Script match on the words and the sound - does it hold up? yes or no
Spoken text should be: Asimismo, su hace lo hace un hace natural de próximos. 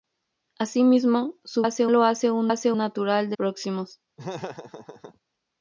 no